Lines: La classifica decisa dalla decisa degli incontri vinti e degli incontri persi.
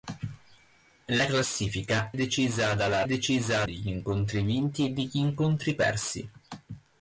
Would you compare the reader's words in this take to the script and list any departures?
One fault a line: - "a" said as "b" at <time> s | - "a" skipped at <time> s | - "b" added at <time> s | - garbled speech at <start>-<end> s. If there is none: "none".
none